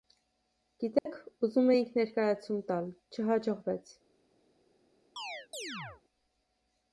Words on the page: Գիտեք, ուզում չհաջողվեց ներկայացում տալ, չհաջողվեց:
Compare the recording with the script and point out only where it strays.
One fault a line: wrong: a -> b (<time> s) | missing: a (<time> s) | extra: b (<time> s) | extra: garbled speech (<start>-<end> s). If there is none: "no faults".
wrong: չհաջողվեց -> էինք (1.7 s)